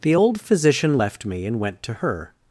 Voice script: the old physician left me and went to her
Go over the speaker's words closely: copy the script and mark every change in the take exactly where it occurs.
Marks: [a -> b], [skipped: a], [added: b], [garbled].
the old physician left me and went to her